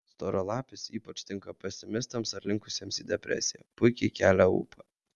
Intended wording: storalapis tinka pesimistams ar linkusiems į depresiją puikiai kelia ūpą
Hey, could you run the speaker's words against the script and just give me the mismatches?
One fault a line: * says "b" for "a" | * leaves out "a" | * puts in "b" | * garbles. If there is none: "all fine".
* puts in "ypač"